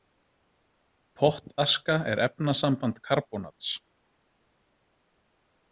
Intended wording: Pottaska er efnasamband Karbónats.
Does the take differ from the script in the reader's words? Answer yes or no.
no